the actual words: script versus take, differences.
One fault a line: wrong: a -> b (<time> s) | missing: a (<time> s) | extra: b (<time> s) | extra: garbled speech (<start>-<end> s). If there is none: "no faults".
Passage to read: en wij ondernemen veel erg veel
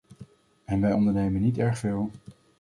wrong: veel -> niet (1.4 s)